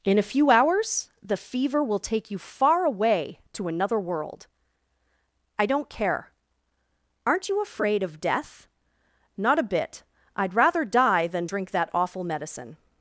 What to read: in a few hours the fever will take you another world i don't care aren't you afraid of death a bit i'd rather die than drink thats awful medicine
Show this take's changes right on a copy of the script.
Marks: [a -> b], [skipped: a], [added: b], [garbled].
in a few hours the fever will take you [added: far away to] another world i don't care aren't you afraid of death [added: not] a bit i'd rather die than drink [thats -> that] awful medicine